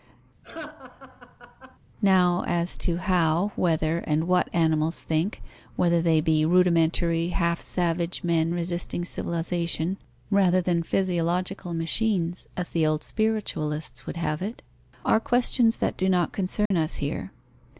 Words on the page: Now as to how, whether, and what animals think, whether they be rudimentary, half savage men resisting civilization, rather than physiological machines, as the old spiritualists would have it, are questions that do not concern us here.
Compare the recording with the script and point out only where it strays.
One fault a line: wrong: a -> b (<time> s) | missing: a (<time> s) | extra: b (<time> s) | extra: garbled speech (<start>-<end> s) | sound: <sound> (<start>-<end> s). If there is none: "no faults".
sound: laugh (0.4-1.8 s)
sound: dropout (16.7-16.7 s)